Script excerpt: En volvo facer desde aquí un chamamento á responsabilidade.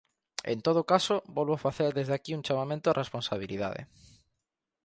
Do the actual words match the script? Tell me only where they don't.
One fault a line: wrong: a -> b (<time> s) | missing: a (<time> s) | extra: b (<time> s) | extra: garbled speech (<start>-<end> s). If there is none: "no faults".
extra: todo caso (0.7 s)